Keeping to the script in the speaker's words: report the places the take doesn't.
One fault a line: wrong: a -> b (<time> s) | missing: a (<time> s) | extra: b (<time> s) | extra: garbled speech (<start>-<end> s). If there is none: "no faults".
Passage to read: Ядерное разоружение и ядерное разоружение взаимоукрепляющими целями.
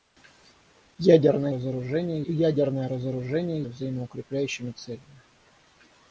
no faults